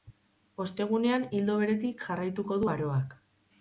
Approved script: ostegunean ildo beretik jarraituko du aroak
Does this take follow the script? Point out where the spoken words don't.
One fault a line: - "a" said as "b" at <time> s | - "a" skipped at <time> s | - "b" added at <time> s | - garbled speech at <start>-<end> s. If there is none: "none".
none